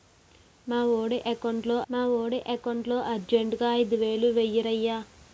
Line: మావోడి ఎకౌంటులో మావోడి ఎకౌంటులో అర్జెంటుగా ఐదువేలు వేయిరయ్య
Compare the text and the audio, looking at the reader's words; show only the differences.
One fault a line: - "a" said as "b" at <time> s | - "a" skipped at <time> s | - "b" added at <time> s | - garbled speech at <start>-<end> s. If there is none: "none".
none